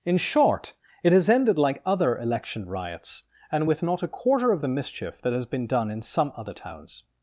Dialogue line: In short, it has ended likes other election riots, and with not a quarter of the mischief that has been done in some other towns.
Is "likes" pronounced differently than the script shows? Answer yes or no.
yes